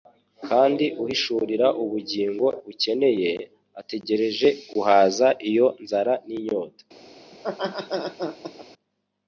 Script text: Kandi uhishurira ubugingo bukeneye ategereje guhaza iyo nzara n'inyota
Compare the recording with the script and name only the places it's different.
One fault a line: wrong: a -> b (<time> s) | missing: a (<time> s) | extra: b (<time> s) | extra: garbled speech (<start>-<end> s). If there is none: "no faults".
no faults